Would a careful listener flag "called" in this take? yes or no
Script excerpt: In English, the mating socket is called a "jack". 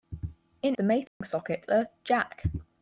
yes